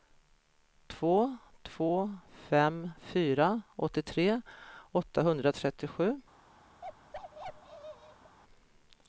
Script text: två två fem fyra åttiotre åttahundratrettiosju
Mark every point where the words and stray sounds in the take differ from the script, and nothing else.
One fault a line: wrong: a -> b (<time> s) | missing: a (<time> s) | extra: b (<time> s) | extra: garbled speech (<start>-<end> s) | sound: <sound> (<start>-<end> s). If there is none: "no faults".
sound: bark (6.8-8.4 s)